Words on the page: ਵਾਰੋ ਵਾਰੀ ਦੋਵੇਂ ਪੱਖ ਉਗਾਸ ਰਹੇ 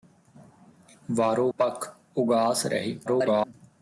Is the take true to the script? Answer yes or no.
no